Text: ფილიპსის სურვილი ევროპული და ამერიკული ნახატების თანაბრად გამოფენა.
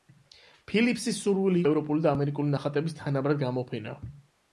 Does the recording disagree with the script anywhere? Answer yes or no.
no